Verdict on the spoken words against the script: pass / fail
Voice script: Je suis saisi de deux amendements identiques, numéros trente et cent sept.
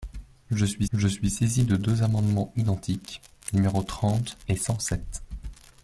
fail